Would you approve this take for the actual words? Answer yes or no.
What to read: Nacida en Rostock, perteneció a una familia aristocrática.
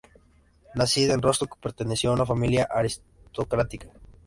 yes